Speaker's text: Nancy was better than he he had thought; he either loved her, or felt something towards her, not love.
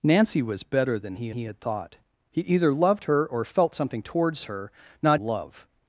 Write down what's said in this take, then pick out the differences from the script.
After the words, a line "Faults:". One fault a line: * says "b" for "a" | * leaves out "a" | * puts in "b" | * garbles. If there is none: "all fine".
Nancy was better than he he had thought; he either loved her, or felt something towards her, not love.
Faults:
all fine